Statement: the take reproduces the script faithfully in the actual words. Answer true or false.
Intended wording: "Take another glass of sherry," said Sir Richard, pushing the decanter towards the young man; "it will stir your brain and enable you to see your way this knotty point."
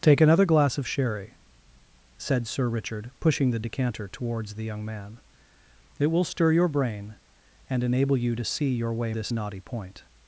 true